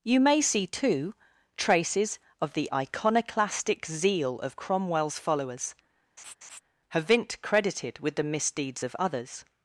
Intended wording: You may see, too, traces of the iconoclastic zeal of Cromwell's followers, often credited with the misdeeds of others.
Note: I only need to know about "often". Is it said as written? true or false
false